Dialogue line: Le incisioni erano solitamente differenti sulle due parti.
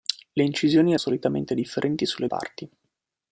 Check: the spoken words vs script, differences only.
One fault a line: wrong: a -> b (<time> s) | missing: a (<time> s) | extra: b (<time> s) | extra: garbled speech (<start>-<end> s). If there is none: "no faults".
missing: erano (0.9 s)
missing: due (2.3 s)